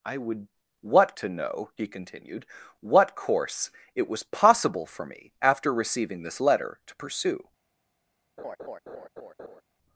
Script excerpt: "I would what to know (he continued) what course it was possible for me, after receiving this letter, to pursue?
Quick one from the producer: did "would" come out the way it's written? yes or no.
yes